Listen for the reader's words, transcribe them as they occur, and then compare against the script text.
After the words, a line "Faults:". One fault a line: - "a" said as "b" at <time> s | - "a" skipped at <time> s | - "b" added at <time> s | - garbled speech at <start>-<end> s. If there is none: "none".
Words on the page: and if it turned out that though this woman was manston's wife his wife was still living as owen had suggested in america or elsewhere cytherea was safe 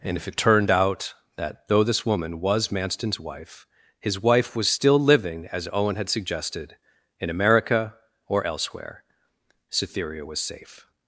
and if it turned out that though this woman was manston's wife his wife was still living as owen had suggested in america or elsewhere cytherea was safe
Faults:
none